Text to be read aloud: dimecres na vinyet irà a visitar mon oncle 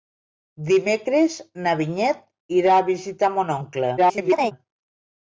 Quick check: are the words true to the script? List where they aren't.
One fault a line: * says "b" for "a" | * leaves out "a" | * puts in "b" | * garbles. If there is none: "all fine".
* garbles